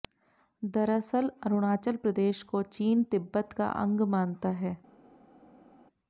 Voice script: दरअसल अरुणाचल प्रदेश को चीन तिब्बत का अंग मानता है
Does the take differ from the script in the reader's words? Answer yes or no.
no